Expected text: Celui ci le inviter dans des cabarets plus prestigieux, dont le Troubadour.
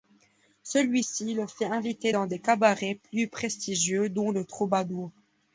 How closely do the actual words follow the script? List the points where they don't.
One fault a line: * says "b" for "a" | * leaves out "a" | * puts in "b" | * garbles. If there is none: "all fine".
* puts in "fait"